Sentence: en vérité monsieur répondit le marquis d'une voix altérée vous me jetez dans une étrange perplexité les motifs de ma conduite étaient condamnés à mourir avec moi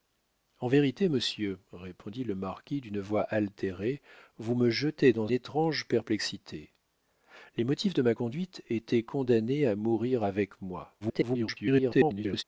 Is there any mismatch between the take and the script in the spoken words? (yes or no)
yes